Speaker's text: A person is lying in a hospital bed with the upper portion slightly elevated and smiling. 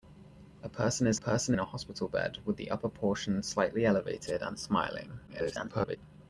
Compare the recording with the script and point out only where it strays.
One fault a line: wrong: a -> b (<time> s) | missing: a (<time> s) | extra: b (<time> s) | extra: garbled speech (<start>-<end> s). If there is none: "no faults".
wrong: lying -> person (1.2 s)
extra: garbled speech (5.3-6.0 s)